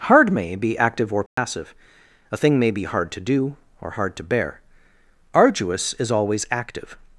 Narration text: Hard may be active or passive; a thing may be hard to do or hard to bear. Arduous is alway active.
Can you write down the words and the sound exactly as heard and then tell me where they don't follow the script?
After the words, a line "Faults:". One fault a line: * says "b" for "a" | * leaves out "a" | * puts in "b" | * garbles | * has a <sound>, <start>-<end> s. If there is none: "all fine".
Hard may be active or passive; a thing may be hard to do or hard to bear. Arduous is always active.
Faults:
* has a dropout, 1.3-1.4 s
* says "always" for "alway"